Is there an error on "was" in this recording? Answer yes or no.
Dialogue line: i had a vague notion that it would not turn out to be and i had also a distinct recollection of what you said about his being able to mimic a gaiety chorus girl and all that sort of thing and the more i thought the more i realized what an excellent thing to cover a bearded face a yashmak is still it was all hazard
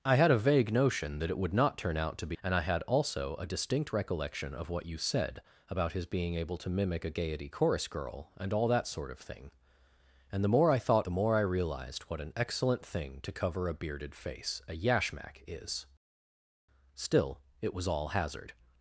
no